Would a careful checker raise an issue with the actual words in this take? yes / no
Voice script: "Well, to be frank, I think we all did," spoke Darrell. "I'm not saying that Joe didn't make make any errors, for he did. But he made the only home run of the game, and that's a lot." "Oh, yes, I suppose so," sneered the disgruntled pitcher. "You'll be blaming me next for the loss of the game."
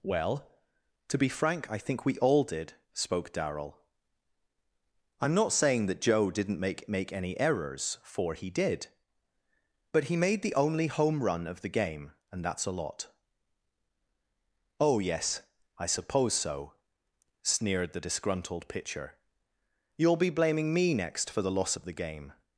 no